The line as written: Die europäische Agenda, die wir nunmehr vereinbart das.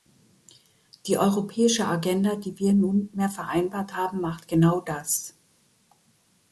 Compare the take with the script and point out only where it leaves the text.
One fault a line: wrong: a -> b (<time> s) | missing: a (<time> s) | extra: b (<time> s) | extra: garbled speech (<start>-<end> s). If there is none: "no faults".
extra: haben macht genau (4.0 s)